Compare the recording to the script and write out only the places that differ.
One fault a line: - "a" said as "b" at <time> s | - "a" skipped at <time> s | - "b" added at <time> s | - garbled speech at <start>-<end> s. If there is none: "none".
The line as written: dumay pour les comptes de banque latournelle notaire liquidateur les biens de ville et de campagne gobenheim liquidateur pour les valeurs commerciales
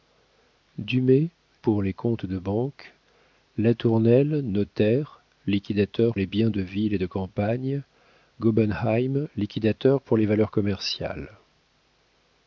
none